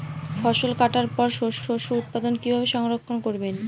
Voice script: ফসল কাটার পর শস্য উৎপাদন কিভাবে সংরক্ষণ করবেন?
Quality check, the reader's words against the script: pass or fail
fail